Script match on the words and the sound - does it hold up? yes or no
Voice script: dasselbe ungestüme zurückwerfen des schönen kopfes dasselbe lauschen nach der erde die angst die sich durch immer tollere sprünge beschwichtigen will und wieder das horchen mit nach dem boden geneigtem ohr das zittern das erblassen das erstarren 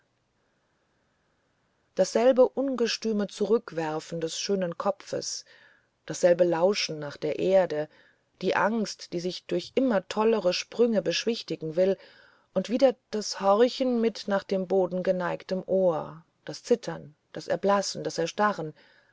yes